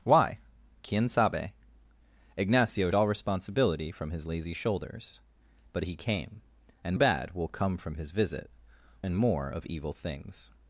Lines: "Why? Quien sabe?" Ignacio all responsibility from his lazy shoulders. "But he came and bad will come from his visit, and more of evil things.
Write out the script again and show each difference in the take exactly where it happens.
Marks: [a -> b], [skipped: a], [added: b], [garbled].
"Why? Quien sabe?" Ignacio all responsibility from his lazy shoulders. "But he came and bad will come from his visit, and more of evil things.